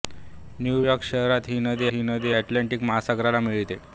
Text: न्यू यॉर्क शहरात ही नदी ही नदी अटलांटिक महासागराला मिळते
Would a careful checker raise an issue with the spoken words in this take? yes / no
no